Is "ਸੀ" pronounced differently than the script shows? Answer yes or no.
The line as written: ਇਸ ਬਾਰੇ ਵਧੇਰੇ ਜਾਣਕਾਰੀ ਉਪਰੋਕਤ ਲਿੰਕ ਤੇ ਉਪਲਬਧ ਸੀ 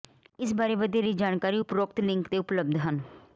yes